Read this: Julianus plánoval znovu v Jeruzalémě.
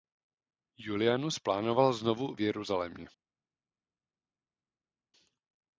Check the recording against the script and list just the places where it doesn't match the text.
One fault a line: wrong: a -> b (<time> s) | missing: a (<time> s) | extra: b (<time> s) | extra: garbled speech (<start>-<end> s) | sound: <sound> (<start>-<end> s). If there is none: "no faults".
no faults